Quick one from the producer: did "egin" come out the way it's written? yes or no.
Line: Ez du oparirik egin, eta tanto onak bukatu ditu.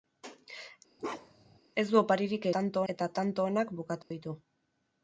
no